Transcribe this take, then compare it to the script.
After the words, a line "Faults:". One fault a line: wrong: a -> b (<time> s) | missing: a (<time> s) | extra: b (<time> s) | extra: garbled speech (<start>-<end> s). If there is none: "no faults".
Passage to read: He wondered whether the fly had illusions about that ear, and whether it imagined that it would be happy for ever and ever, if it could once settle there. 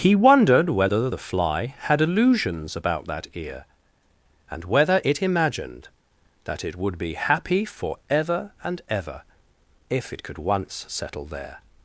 He wondered whether the fly had illusions about that ear, and whether it imagined that it would be happy for ever and ever, if it could once settle there.
Faults:
no faults